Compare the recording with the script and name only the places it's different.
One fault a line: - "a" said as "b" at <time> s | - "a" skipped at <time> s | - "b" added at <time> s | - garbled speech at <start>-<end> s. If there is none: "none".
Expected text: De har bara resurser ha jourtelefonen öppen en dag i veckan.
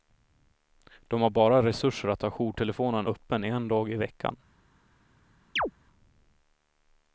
- "att" added at 2.1 s